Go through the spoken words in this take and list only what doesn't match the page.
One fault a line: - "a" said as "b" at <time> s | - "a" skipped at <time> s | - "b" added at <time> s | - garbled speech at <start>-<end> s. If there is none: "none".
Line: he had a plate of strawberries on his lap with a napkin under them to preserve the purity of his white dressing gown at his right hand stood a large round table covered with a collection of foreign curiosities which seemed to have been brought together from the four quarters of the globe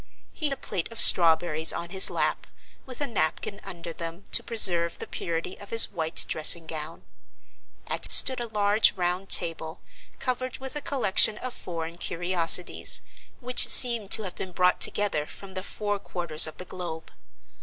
- "had" skipped at 0.5 s
- "his right hand" skipped at 8.1 s